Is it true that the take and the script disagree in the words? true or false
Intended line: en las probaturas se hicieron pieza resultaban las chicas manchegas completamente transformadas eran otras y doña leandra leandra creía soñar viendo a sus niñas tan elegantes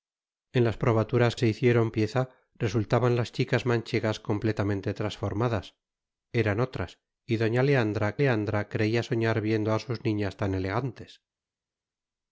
false